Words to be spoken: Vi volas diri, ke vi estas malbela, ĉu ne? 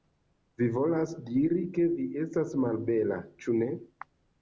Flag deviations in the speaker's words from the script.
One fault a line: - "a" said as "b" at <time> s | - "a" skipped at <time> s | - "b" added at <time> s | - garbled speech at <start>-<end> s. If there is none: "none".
none